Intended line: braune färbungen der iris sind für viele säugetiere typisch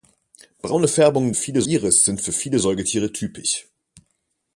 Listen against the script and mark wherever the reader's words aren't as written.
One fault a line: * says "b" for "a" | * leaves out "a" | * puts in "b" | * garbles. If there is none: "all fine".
* says "viele" for "der"